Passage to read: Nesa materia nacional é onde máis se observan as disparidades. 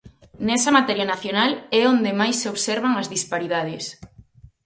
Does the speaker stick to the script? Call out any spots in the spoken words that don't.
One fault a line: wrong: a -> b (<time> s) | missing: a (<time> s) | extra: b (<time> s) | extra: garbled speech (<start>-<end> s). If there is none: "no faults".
no faults